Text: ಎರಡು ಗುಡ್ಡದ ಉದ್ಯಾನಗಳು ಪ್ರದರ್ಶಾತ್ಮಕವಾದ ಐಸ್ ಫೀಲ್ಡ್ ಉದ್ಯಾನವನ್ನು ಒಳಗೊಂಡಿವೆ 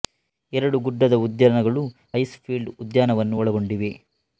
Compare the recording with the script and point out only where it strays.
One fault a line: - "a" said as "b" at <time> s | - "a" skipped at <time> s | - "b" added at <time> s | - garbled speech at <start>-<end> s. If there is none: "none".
- "ಪ್ರದರ್ಶಾತ್ಮಕವಾದ" skipped at 1.8 s